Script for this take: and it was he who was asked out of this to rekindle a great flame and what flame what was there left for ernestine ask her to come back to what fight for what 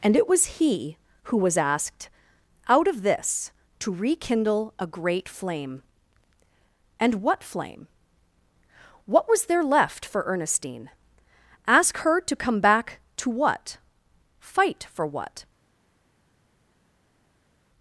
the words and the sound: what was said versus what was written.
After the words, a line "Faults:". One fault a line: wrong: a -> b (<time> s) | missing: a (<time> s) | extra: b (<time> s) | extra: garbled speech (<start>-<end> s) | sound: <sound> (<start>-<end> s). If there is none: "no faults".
and it was he who was asked out of this to rekindle a great flame and what flame what was there left for ernestine ask her to come back to what fight for what
Faults:
no faults